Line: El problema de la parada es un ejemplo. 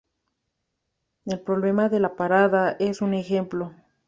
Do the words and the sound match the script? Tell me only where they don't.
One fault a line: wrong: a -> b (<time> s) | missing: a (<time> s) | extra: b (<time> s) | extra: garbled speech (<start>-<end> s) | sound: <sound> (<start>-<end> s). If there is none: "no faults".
no faults